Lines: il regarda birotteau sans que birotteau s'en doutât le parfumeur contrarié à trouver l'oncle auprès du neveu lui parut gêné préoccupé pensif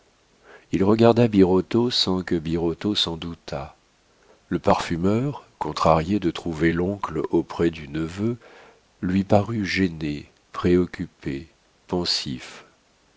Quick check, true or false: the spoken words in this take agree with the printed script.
false